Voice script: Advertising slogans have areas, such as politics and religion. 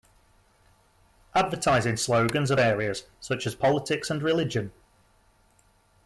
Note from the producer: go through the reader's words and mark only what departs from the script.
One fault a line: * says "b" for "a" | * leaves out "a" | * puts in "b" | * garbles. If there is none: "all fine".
all fine